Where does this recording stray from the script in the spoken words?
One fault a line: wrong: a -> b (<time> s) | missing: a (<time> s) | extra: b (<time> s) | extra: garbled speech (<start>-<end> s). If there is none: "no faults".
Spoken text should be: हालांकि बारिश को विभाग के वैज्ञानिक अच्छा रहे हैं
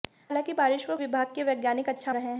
no faults